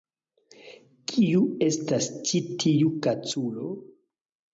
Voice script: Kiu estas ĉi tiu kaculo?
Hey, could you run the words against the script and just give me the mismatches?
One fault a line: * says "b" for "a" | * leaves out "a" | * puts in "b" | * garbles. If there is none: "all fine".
all fine